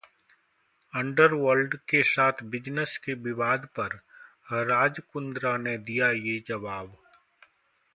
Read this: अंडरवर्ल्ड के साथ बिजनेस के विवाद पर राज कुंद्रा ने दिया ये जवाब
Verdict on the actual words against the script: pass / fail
pass